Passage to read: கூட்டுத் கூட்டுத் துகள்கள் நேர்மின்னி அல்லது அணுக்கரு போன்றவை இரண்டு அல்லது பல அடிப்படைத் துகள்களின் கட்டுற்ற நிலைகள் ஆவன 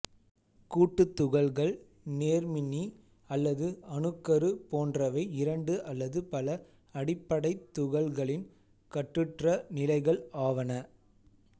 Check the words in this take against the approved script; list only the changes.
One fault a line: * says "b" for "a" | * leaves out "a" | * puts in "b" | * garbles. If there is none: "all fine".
* leaves out "கூட்டுத்"